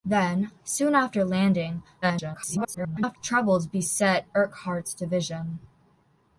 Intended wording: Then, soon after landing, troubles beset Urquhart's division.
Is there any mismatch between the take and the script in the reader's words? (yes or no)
yes